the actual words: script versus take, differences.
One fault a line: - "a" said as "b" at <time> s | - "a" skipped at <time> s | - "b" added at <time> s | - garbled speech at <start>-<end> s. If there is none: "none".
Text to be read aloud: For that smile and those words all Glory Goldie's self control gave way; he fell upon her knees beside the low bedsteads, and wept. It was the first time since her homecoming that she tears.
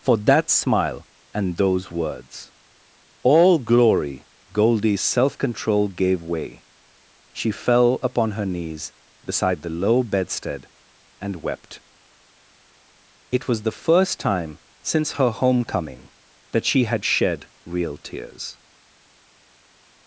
- "he" said as "she" at 7.3 s
- "bedsteads" said as "bedstead" at 10.0 s
- "had shed real" added at 16.8 s